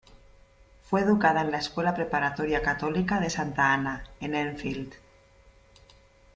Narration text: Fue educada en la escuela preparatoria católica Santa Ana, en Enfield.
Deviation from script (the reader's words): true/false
true